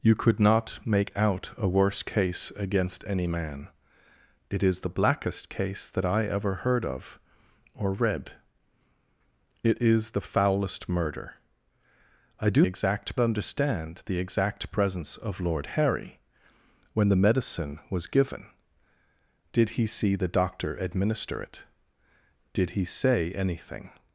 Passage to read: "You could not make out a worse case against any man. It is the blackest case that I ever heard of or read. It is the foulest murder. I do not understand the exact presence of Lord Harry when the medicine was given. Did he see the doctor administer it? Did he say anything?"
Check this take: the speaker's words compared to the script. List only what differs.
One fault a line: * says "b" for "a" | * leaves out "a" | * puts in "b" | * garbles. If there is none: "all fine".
* says "exact" for "not"